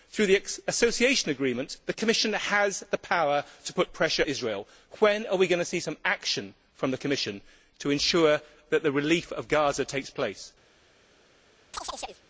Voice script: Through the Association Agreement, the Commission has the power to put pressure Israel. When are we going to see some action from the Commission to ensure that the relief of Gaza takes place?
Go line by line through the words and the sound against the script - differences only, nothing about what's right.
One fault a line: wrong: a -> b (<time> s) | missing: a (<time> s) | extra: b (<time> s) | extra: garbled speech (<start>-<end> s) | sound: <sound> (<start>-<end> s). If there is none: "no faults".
sound: chirp (11.7-12.2 s)